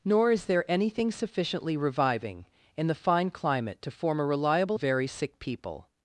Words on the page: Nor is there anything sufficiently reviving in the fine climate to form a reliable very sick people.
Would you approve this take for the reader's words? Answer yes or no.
yes